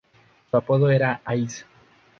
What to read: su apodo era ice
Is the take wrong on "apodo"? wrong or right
right